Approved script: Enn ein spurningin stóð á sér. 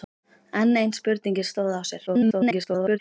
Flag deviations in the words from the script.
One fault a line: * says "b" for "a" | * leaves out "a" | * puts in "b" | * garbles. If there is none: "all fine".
* garbles